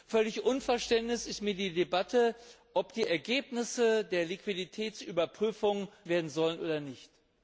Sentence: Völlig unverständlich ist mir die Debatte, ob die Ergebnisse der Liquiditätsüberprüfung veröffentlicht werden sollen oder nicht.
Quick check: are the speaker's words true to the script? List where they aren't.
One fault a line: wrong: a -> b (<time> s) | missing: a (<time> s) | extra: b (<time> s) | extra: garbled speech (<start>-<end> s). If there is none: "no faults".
missing: veröffentlicht (5.9 s)